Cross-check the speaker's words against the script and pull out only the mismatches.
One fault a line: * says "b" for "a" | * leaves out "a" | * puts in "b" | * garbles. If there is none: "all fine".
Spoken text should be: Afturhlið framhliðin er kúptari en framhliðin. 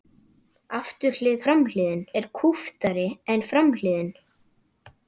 all fine